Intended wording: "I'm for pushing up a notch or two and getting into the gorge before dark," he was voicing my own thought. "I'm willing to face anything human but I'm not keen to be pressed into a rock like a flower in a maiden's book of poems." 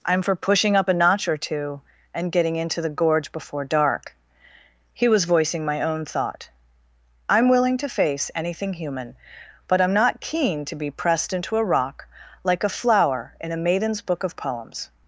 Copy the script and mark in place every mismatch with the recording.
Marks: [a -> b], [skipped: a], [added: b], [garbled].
"I'm for pushing up a notch or two and getting into the gorge before dark," he was voicing my own thought. "I'm willing to face anything human but I'm not keen to be pressed into a rock like a flower in a maiden's book of poems."